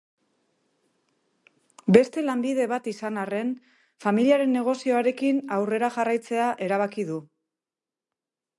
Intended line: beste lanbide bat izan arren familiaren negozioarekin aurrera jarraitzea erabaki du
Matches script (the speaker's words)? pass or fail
pass